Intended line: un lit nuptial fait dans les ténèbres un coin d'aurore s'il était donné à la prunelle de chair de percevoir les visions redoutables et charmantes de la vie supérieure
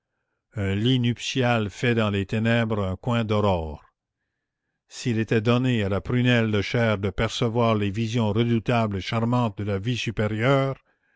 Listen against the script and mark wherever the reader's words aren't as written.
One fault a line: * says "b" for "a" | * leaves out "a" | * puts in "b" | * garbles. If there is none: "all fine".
all fine